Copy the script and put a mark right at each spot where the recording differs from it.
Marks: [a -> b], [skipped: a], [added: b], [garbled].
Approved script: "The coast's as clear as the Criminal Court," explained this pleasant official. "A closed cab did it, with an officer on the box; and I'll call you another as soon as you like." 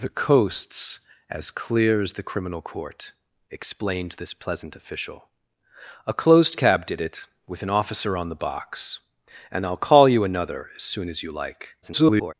"The coast's as clear as the Criminal Court," explained this pleasant official. "A closed cab did it, with an officer on the box; and I'll call you another as soon as you like." [garbled]